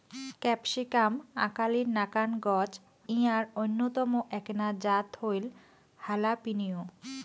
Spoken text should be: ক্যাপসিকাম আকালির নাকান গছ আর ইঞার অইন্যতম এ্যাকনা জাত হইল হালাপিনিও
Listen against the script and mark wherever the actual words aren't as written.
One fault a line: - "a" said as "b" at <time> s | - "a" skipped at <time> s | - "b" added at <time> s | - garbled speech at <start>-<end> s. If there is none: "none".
- "আর" skipped at 2.7 s